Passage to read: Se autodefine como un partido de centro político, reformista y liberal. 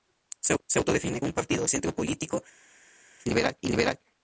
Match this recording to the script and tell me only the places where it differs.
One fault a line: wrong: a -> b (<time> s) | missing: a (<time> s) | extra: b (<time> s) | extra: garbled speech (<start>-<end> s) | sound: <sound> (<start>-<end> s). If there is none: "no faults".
missing: como (1.2 s)
missing: de (1.6 s)
wrong: reformista -> liberal (3.3 s)